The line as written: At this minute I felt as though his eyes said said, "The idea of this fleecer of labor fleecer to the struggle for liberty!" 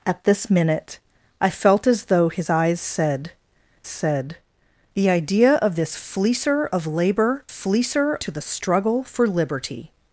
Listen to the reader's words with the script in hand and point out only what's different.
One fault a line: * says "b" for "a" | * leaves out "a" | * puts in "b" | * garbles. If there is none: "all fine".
all fine